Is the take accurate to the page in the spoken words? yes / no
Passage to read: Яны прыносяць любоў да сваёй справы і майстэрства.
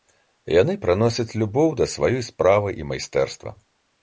yes